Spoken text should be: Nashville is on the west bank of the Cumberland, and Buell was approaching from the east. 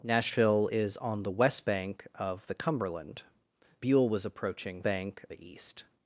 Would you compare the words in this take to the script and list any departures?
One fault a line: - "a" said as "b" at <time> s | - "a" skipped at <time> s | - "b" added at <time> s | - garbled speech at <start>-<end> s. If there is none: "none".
- "and" skipped at 3.2 s
- "from" said as "bank" at 4.8 s